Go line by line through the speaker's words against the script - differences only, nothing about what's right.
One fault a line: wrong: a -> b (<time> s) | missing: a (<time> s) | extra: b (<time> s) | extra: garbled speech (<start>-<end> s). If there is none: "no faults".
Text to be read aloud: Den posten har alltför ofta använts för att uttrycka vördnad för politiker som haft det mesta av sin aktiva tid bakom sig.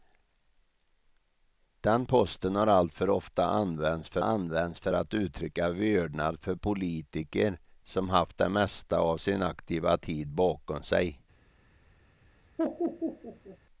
extra: använts för (4.2 s)